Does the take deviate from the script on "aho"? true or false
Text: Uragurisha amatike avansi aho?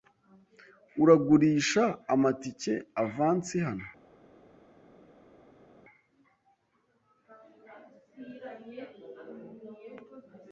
true